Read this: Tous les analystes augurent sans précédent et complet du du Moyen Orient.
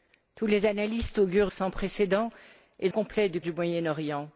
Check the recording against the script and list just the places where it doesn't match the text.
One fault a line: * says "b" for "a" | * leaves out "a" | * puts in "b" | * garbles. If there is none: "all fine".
all fine